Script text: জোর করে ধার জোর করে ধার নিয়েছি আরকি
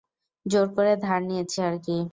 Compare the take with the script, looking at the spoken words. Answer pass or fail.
fail